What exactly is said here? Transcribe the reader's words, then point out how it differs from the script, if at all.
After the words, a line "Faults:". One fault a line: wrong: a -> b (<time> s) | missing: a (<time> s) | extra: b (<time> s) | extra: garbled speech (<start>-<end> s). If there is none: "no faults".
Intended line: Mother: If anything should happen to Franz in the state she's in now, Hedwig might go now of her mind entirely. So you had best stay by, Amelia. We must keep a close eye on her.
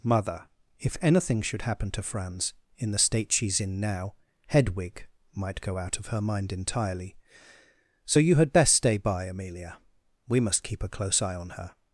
Mother: If anything should happen to Franz in the state she's in now, Hedwig might go out of her mind entirely. So you had best stay by, Amelia. We must keep a close eye on her.
Faults:
wrong: now -> out (5.8 s)